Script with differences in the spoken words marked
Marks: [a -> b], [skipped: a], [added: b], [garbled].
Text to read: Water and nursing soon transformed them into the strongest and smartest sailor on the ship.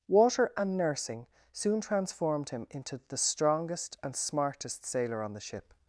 Water and nursing soon transformed [them -> him] into the strongest and smartest sailor on the ship.